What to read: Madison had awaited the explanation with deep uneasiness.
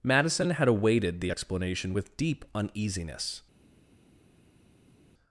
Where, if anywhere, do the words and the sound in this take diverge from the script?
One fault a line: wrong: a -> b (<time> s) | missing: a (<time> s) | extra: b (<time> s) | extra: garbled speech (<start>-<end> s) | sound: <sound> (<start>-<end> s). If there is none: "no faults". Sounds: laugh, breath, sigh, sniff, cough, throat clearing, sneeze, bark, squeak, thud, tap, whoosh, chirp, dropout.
no faults